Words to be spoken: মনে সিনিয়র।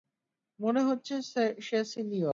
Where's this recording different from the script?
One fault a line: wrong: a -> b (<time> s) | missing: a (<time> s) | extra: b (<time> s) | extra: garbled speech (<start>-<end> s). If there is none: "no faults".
extra: হচ্ছে সে (0.8 s)